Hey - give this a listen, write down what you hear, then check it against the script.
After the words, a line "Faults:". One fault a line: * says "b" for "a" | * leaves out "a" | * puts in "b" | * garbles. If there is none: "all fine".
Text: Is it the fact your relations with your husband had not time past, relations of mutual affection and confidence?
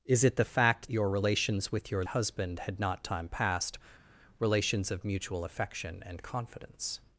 Is it the fact your relations with your husband had not time past, relations of mutual affection and confidence?
Faults:
all fine